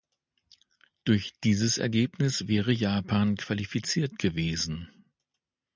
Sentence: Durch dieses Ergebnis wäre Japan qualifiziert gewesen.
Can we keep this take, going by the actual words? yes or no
yes